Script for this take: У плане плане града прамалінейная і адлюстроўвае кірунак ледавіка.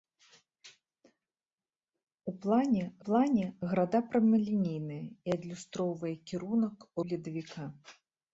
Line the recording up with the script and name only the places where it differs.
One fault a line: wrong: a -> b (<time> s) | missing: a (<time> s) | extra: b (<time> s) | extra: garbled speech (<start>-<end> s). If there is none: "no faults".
no faults